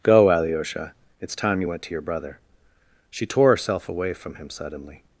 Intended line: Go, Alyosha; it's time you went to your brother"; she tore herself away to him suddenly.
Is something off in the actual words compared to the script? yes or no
yes